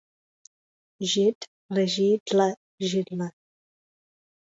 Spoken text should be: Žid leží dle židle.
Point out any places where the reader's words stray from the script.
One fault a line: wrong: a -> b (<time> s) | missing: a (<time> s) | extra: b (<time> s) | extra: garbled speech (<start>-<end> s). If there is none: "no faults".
no faults